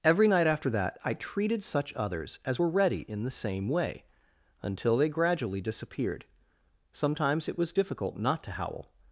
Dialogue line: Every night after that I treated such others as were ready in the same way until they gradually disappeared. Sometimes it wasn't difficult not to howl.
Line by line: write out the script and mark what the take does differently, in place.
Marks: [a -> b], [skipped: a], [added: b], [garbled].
Every night after that I treated such others as were ready in the same way until they gradually disappeared. Sometimes it [wasn't -> was] difficult not to howl.